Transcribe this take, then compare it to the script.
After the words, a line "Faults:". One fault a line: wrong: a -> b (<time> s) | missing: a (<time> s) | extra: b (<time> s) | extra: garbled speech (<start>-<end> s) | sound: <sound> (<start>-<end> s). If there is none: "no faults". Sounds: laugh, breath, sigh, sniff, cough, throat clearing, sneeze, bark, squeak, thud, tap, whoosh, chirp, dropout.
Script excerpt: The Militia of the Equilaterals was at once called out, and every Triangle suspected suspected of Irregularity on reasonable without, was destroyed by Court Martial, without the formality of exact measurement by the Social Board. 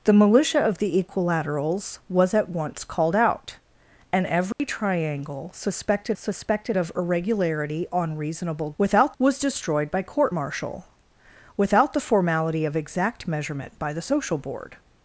The Militia of the Equilaterals was at once called out, and every Triangle suspected suspected of Irregularity on reasonable without, was destroyed by Court Martial, without the formality of exact measurement by the Social Board.
Faults:
sound: dropout (4.5-4.6 s)